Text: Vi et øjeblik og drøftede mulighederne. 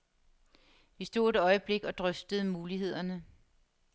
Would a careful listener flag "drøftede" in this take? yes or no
no